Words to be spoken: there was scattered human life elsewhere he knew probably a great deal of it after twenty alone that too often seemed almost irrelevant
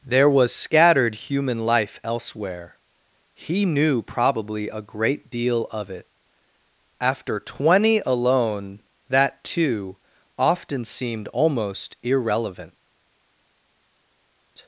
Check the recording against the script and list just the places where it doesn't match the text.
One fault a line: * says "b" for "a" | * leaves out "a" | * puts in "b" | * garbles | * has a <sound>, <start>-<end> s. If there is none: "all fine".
all fine